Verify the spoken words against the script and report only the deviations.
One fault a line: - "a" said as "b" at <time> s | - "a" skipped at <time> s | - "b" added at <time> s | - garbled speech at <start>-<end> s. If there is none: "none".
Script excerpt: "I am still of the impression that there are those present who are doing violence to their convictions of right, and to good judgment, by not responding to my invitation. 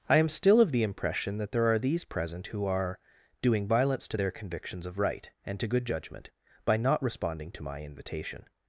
- "those" said as "these" at 1.8 s